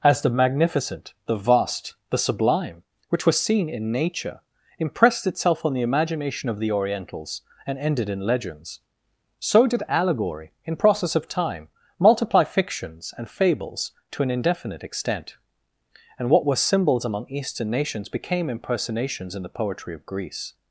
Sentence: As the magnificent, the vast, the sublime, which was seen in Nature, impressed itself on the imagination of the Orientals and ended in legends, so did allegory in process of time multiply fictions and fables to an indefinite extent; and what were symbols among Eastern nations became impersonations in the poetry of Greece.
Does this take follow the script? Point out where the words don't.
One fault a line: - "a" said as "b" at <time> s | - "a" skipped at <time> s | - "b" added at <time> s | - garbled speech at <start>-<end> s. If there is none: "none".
none